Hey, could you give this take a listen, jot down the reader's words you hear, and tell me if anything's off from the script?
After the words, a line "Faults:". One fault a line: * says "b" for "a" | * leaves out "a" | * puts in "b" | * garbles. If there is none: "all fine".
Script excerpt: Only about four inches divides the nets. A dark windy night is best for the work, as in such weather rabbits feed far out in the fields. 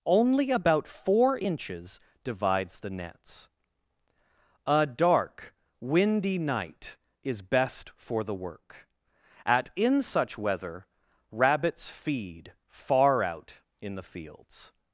Only about four inches divides the nets. A dark windy night is best for the work, at in such weather rabbits feed far out in the fields.
Faults:
* says "at" for "as"